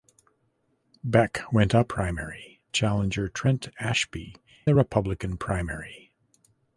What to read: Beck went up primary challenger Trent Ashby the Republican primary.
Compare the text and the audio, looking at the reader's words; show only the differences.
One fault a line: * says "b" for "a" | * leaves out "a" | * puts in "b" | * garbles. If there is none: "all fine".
all fine